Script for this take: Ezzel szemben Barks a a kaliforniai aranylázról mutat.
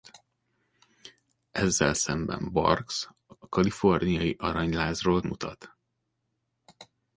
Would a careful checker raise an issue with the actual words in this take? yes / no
no